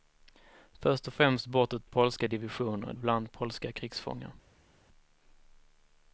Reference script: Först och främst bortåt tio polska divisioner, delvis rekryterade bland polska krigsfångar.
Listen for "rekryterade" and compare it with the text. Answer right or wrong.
wrong